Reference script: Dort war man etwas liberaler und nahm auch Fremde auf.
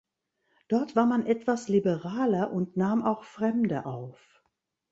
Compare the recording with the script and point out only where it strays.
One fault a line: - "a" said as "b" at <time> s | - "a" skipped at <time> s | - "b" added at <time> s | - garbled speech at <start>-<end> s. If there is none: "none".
none